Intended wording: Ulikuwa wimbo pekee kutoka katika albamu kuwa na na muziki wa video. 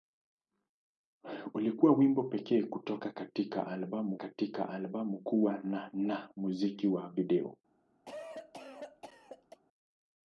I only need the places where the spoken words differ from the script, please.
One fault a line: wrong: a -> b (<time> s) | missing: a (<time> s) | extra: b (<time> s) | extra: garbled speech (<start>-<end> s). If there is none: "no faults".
extra: katika albamu (4.1 s)